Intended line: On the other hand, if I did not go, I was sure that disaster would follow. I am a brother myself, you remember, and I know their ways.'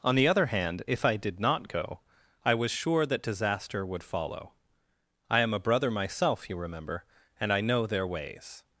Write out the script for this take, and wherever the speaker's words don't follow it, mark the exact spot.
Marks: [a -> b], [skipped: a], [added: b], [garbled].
On the other hand, if I did not go, I was sure that disaster would follow. I am a brother myself, you remember, and I know their ways.'